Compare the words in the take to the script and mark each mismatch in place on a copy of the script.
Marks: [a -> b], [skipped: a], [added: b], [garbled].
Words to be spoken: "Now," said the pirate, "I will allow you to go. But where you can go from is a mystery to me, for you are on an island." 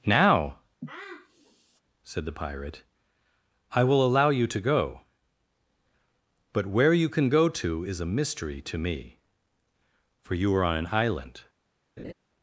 "Now," said the pirate, "I will allow you to go. But where you can go [from -> to] is a mystery to me, for you are on an island."